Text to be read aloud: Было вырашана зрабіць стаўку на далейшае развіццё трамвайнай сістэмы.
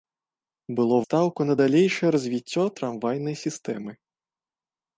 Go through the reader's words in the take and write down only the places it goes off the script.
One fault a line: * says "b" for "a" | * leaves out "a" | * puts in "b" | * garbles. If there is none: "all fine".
* leaves out "вырашана зрабіць"